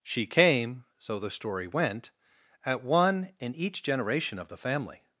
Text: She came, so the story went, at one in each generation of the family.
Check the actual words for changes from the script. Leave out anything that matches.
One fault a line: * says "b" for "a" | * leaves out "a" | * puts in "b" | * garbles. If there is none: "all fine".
all fine